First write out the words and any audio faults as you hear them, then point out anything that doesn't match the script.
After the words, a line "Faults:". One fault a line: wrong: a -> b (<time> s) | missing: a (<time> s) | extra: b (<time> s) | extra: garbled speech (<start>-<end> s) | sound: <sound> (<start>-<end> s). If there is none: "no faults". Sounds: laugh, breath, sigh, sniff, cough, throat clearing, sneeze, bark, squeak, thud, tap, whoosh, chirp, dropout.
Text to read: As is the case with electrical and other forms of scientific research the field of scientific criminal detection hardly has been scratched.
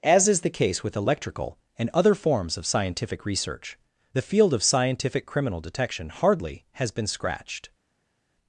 As is the case with electrical and other forms of scientific research the field of scientific criminal detection hardly has been scratched.
Faults:
no faults